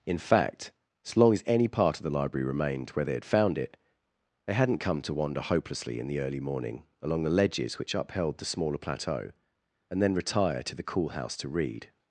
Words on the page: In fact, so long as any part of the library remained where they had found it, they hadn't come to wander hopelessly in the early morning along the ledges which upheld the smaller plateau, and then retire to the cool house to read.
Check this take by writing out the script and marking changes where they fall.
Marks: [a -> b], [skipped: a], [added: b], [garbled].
In fact, so long as any part of the library remained where they had found it, they hadn't come to wander hopelessly in the early morning along the ledges which upheld the smaller plateau, and then retire to the cool house to read.